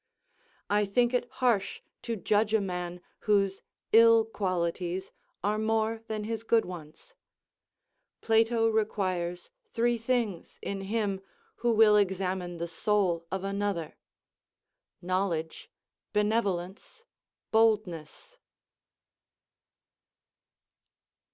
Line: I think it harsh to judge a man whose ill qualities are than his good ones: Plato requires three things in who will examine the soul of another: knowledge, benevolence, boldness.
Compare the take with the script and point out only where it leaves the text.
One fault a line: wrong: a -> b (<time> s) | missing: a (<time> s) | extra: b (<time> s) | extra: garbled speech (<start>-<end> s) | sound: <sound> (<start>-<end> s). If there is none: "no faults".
extra: more (5.6 s)
extra: him (10.8 s)